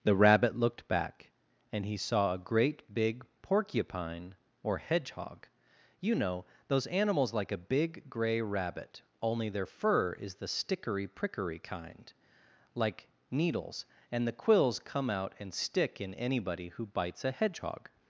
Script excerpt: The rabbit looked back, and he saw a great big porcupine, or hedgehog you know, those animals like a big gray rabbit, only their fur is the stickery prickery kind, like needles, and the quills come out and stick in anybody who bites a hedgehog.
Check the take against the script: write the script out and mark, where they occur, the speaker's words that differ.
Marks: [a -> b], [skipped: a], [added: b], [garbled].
The rabbit looked back, and he saw a great big porcupine, or hedgehog you know, those animals like a big gray rabbit, only their fur is the stickery prickery kind, like needles, and the quills come out and stick in anybody who bites a hedgehog.